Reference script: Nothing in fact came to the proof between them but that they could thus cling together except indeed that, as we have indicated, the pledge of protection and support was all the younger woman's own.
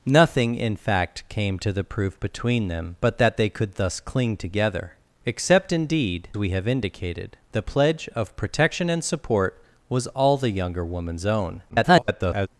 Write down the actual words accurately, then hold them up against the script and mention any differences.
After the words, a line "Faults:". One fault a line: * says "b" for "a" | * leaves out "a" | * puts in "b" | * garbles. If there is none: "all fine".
Nothing in fact came to the proof between them but that they could thus cling together except indeed we have indicated, the pledge of protection and support was all the younger woman's own. [garbled]
Faults:
* leaves out "that as"
* garbles